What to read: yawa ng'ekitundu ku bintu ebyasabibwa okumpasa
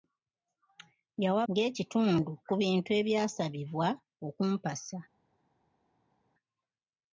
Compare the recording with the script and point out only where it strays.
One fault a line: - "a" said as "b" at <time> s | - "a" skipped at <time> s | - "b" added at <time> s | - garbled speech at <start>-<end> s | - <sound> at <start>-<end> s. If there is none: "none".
none